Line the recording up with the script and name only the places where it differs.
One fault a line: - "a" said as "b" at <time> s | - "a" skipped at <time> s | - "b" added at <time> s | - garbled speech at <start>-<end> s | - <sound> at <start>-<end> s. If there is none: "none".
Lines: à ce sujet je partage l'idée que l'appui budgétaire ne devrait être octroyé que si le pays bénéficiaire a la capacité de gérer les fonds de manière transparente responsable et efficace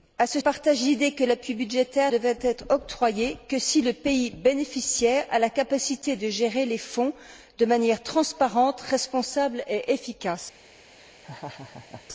- "sujet je" skipped at 0.4 s
- "ne" skipped at 2.1 s
- laugh at 11.0-12.0 s